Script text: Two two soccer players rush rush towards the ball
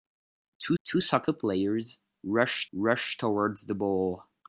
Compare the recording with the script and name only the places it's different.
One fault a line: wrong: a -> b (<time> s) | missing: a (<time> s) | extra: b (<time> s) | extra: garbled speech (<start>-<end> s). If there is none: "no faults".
no faults